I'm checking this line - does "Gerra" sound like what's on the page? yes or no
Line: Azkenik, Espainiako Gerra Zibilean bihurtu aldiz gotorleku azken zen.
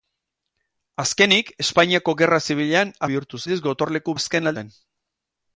yes